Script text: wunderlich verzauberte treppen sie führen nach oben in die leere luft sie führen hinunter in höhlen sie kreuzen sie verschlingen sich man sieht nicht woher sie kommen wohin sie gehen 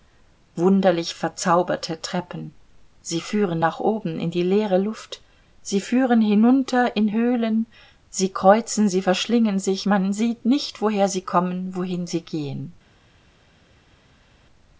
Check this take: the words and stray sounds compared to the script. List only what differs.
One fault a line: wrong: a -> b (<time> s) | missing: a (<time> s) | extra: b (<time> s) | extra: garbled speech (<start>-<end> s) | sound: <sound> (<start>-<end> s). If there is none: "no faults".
no faults